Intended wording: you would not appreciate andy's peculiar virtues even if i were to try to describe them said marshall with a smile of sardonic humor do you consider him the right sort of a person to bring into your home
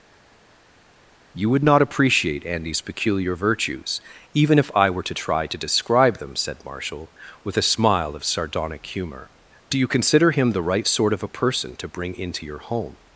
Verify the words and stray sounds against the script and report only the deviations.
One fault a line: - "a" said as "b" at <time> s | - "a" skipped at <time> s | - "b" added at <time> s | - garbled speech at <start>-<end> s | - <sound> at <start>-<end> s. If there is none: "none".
none